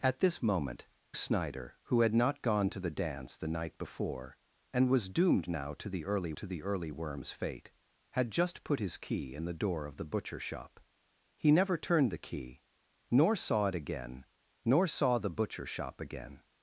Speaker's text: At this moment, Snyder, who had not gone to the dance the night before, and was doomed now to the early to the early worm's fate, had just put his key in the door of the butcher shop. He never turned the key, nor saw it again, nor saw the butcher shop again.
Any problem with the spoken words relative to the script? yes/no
no